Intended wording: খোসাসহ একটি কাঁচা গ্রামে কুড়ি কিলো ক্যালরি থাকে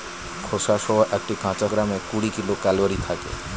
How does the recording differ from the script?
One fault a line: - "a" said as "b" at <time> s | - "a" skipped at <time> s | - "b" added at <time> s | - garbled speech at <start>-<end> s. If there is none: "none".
none